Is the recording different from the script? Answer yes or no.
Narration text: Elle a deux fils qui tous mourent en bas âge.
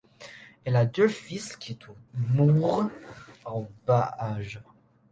no